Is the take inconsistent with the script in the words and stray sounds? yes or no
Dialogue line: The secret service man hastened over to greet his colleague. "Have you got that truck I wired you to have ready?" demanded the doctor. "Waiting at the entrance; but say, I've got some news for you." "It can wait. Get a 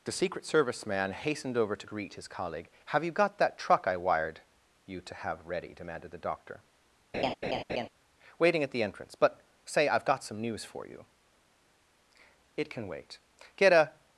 yes